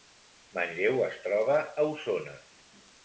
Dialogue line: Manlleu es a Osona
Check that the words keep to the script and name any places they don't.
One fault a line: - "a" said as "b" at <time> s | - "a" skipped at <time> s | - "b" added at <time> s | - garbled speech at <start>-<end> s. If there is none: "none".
- "troba" added at 1.3 s